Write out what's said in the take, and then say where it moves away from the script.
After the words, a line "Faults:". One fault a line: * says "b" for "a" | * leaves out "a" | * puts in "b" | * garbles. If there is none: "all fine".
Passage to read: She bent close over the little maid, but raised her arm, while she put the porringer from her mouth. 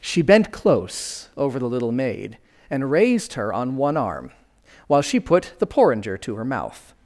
She bent close over the little maid, and raised her on one arm, while she put the porringer to her mouth.
Faults:
* says "and" for "but"
* puts in "on one"
* says "to" for "from"